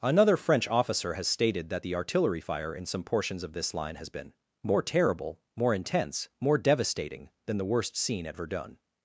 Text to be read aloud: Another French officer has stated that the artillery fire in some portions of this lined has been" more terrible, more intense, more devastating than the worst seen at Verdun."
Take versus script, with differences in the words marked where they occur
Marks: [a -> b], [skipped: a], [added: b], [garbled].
Another French officer has stated that the artillery fire in some portions of this [lined -> line] has been" more terrible, more intense, more devastating than the worst seen at Verdun."